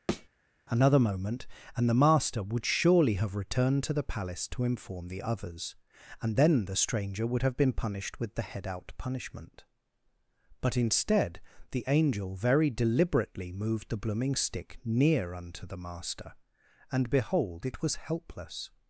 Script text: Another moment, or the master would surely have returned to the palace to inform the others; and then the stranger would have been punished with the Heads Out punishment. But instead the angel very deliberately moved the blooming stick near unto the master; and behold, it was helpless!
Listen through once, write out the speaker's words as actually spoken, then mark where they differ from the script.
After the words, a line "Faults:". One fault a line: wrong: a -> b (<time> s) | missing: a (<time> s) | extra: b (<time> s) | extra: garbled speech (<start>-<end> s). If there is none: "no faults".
Another moment, and the master would surely have returned to the palace to inform the others; and then the stranger would have been punished with the Head Out punishment. But instead the angel very deliberately moved the blooming stick near unto the master; and behold, it was helpless!
Faults:
wrong: or -> and (1.8 s)
wrong: Heads -> Head (8.4 s)